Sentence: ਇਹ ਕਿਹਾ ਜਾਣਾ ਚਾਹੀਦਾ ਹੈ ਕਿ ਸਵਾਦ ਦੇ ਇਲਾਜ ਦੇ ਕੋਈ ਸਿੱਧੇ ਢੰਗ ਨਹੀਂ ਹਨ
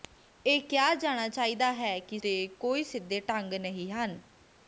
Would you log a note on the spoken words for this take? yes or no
yes